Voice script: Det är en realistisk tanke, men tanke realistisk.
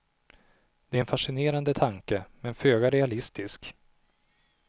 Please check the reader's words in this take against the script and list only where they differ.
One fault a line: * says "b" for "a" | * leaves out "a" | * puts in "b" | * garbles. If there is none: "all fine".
* says "fascinerande" for "realistisk"
* says "föga" for "tanke"